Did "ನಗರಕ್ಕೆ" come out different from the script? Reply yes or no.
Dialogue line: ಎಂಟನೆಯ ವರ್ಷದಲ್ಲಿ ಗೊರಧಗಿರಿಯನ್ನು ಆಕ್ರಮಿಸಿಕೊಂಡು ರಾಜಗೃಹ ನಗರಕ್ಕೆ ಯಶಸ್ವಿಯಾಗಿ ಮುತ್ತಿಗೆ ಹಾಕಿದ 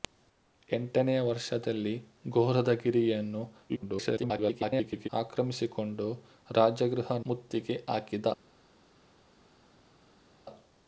yes